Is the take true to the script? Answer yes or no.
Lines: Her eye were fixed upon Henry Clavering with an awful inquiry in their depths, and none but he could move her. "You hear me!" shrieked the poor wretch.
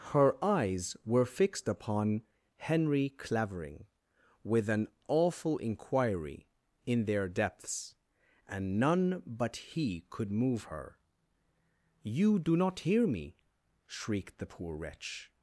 no